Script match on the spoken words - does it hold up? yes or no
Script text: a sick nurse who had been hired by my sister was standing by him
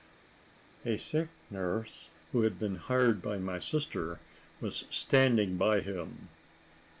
yes